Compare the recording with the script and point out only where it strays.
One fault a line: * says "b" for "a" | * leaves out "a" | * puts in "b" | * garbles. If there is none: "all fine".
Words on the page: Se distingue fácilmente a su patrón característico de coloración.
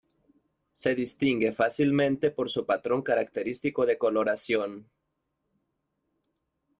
* says "por" for "a"